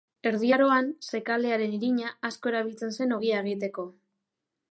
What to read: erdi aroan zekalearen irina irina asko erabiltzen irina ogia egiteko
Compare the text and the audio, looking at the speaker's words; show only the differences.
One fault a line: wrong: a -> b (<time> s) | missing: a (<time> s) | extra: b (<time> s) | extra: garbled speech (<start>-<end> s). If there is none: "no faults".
missing: irina (2.1 s)
wrong: irina -> zen (3.0 s)